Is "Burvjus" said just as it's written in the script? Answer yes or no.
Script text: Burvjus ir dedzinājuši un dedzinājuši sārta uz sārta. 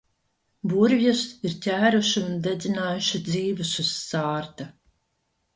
yes